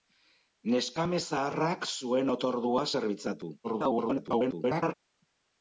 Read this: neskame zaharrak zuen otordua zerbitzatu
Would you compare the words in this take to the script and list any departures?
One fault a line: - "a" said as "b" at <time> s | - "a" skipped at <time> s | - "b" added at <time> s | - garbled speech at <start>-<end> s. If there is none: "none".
- garbled speech at 3.6-4.9 s